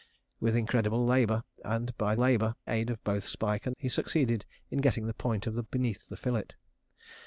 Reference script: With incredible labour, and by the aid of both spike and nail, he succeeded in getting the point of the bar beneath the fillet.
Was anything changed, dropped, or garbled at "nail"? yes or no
yes